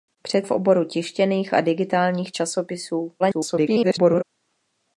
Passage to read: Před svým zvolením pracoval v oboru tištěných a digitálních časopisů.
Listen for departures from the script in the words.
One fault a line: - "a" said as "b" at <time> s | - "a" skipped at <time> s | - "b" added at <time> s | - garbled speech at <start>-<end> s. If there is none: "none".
- "svým zvolením pracoval" skipped at 0.5 s
- garbled speech at 3.2-4.2 s